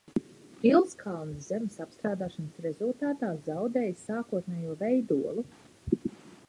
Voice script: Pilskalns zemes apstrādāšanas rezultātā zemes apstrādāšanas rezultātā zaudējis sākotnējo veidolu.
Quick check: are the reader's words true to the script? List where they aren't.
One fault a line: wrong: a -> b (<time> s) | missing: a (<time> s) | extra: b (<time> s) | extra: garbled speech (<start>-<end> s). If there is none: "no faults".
missing: zemes apstrādāšanas rezultātā (3.3 s)